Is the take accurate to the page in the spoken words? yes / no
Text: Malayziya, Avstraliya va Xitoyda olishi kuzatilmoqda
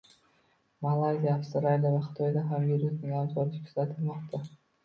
no